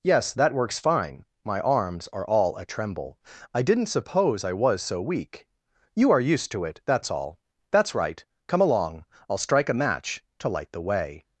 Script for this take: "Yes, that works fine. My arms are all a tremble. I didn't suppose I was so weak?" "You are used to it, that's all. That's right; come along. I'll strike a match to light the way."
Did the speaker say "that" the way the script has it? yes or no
yes